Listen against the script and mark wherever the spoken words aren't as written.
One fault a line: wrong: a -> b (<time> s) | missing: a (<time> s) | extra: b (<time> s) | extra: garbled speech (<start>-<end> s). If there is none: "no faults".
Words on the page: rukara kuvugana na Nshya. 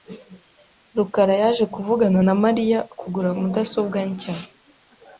extra: yaje (1.4 s)
extra: Mariya kugura mudasobwa (2.4 s)